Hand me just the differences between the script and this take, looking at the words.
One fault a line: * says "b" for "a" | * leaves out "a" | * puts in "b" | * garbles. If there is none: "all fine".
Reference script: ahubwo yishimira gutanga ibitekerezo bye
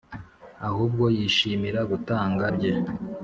* leaves out "ibitekerezo"